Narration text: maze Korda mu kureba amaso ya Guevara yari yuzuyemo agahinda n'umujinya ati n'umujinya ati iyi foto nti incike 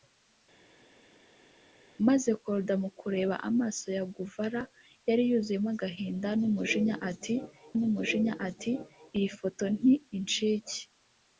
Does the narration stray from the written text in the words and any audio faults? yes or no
no